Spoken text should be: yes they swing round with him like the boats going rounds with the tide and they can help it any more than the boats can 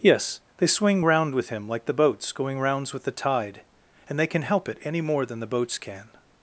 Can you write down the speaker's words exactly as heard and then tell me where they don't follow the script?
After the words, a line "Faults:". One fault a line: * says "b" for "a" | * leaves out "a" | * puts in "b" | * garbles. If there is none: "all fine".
yes they swing round with him like the boats going rounds with the tide and they can help it any more than the boats can
Faults:
all fine